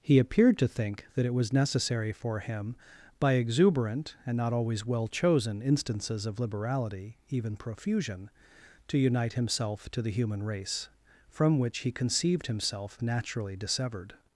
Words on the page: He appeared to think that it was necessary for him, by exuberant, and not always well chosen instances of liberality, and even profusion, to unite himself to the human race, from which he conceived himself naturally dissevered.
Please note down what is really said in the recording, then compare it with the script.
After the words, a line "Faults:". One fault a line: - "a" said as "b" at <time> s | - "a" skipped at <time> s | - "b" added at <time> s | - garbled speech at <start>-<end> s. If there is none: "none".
He appeared to think that it was necessary for him, by exuberant, and not always well chosen instances of liberality, even profusion, to unite himself to the human race, from which he conceived himself naturally dissevered.
Faults:
- "and" skipped at 7.2 s